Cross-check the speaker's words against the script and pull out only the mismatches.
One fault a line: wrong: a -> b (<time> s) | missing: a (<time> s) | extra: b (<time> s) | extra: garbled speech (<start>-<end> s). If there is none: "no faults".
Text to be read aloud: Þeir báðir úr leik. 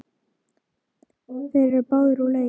extra: eru (1.7 s)